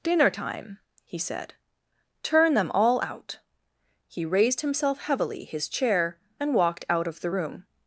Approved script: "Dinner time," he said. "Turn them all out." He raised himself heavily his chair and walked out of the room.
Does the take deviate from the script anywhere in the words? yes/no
no